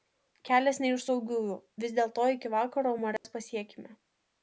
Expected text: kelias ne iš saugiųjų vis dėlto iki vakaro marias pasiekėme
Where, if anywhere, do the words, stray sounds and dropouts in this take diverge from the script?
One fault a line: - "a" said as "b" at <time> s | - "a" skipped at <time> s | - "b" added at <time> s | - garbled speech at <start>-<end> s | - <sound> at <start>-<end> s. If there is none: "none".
- dropout at 3.2-3.2 s